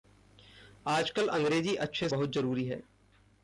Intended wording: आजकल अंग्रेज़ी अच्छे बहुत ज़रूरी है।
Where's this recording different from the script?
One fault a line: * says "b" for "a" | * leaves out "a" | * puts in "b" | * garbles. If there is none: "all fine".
all fine